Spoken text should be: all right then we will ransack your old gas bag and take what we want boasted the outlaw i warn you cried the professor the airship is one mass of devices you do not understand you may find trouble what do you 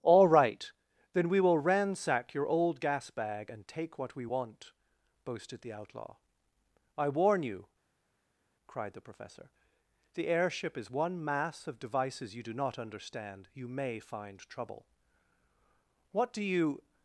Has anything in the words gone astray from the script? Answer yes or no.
no